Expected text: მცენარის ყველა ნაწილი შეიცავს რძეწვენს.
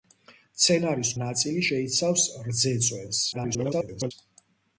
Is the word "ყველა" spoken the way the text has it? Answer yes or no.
no